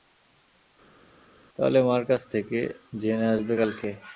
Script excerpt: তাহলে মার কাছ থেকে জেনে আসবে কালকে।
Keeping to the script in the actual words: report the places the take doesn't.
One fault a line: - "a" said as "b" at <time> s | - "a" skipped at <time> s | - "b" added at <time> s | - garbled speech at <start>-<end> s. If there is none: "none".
none